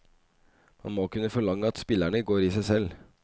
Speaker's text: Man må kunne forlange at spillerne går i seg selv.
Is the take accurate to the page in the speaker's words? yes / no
yes